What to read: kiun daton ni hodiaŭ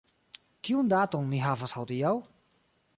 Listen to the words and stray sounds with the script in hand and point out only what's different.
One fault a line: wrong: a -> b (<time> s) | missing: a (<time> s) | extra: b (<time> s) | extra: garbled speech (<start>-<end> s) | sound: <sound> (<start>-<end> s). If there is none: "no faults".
extra: havas (1.4 s)